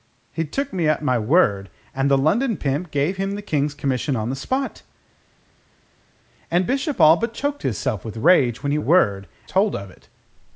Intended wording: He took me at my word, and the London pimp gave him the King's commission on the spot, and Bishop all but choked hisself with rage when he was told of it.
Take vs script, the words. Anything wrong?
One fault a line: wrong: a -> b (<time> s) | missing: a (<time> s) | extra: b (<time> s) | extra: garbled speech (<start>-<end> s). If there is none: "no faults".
wrong: was -> word (8.8 s)